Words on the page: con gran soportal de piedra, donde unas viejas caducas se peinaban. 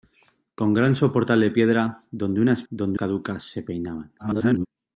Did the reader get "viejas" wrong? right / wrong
wrong